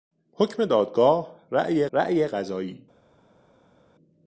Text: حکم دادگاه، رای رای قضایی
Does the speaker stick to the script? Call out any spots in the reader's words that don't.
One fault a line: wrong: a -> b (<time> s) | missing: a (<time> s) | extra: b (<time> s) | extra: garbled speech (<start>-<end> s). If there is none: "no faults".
no faults